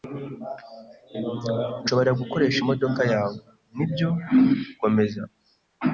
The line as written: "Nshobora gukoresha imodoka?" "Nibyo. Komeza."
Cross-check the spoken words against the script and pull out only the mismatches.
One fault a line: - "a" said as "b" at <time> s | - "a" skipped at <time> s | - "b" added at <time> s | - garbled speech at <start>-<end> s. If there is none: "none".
- "yawe" added at 3.1 s